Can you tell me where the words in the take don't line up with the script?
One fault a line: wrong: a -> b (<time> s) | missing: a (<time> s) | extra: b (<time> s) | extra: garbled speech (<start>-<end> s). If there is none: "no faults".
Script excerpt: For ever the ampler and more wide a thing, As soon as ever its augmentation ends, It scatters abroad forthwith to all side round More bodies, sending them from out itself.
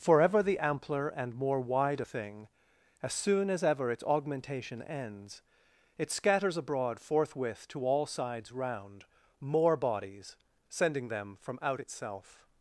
wrong: side -> sides (8.1 s)